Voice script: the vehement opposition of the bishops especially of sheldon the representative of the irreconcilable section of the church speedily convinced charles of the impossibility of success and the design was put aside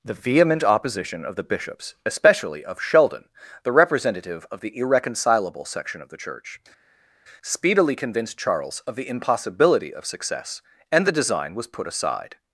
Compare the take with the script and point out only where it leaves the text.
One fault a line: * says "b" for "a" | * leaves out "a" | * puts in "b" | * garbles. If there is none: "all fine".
all fine